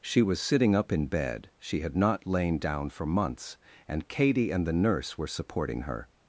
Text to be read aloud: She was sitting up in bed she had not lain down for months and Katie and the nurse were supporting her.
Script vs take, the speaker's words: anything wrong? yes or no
no